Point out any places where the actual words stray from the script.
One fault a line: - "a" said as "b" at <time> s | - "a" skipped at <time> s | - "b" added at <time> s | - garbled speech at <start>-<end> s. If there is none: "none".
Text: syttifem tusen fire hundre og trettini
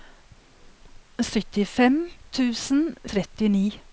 - "fire hundre og" skipped at 2.8 s